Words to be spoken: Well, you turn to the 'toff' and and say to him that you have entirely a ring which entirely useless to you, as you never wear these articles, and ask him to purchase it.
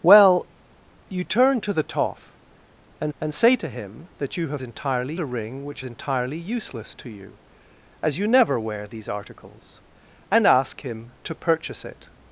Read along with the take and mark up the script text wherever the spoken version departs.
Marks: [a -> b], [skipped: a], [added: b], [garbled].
Well, you turn to the 'toff' and and say to him that you have entirely a ring which entirely useless to you, as you never wear these articles, and ask him to purchase it.